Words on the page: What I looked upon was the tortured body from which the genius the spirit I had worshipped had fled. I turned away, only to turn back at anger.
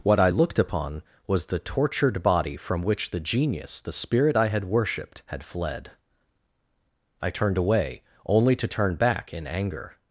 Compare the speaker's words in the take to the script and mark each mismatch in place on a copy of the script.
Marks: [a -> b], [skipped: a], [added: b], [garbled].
What I looked upon was the tortured body from which the genius the spirit I had worshipped had fled. I turned away, only to turn back [at -> in] anger.